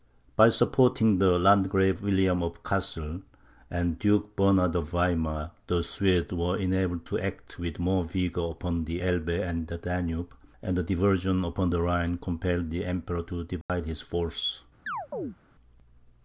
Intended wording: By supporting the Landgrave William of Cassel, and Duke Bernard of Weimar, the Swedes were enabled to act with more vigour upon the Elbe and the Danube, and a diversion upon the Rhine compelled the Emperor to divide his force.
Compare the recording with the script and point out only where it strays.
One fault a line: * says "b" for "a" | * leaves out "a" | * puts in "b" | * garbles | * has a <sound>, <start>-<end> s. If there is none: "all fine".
* has a dropout, 13.6-13.7 s
* has a chirp, 14.9-15.4 s